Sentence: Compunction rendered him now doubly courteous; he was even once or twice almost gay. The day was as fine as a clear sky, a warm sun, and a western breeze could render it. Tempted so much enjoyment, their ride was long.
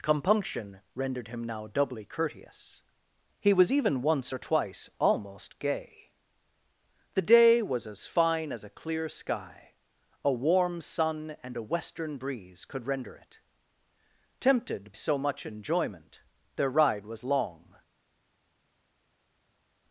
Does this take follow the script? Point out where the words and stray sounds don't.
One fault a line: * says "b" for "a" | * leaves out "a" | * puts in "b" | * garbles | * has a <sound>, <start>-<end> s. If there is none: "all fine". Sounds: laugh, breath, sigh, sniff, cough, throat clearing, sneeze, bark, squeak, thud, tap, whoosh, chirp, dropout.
all fine